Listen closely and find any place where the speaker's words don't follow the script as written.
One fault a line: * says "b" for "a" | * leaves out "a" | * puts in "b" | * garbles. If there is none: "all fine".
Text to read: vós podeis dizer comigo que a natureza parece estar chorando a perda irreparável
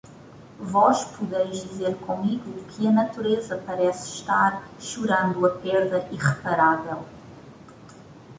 all fine